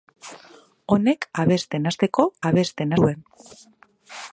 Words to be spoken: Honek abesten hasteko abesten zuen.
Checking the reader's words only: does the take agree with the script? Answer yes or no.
yes